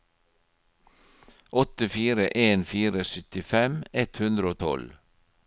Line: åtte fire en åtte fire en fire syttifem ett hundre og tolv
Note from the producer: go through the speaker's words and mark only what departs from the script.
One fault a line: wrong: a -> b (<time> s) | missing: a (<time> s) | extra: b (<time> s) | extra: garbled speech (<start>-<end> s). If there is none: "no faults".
missing: åtte fire en (2.6 s)